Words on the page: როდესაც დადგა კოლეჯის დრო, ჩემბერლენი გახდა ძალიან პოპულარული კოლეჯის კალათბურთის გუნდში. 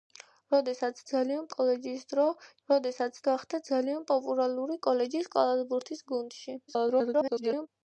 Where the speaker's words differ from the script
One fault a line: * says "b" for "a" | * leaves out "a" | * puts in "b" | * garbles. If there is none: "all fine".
* says "ძალიან" for "დადგა"
* says "როდესაც" for "ჩემბერლენი"
* garbles